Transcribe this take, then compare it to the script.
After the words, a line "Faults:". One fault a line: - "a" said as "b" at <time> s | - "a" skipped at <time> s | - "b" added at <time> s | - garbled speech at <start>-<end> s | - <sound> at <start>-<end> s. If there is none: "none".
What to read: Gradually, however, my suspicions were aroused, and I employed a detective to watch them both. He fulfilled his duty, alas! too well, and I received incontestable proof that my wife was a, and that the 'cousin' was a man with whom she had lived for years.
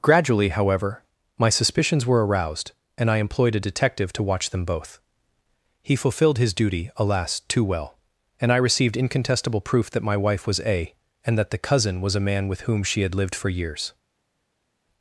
Gradually, however, my suspicions were aroused, and I employed a detective to watch them both. He fulfilled his duty, alas! too well, and I received incontestable proof that my wife was a, and that the 'cousin' was a man with whom she had lived for years.
Faults:
none